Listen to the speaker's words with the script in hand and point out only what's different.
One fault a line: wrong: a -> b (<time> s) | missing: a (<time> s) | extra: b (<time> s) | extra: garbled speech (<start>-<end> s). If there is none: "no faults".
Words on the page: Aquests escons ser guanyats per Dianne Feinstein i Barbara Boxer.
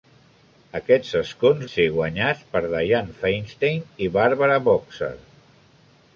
no faults